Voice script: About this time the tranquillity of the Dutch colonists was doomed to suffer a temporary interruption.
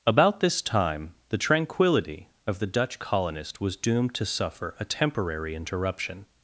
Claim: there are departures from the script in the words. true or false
true